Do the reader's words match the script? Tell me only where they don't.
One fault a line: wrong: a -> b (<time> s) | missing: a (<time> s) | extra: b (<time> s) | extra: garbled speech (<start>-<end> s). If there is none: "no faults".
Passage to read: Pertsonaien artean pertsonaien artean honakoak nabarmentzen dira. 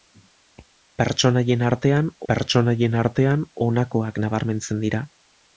no faults